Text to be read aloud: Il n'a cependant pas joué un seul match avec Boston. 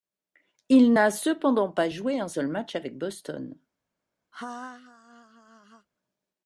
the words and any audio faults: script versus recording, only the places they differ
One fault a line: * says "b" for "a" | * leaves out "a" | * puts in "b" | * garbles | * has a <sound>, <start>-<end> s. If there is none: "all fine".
* has a laugh, 4.3-5.9 s